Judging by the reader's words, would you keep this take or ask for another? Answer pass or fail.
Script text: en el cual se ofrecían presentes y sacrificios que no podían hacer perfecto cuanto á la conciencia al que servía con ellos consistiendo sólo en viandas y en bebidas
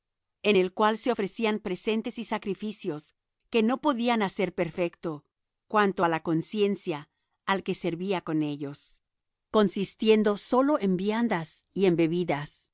pass